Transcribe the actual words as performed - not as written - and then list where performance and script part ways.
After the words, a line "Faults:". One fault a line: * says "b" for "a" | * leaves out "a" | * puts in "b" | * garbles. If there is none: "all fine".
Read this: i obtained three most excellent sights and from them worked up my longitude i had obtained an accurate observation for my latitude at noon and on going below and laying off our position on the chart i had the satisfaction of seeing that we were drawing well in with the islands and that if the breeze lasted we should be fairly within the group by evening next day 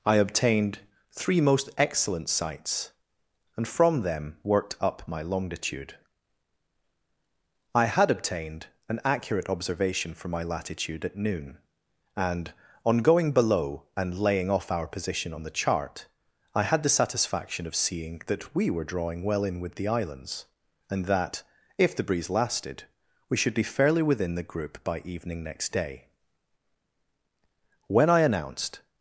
i obtained three most excellent sights and from them worked up my longitude i had obtained an accurate observation for my latitude at noon and on going below and laying off our position on the chart i had the satisfaction of seeing that we were drawing well in with the islands and that if the breeze lasted we should be fairly within the group by evening next day when i announced
Faults:
* puts in "when i announced"